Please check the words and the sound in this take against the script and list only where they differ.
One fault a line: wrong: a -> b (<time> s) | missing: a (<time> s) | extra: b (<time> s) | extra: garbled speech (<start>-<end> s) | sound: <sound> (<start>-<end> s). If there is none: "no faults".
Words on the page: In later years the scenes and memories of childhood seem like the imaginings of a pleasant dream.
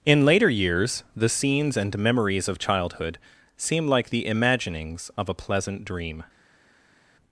no faults